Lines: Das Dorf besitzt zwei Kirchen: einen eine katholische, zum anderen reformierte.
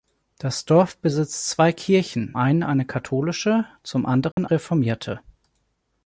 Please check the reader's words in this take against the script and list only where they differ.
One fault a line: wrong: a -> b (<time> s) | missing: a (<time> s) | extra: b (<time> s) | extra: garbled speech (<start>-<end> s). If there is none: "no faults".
no faults